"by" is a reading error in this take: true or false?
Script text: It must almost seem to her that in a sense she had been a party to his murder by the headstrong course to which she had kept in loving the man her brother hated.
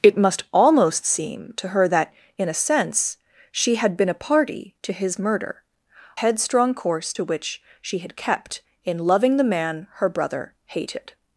true